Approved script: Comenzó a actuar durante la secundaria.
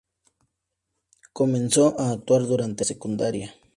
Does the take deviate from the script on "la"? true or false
true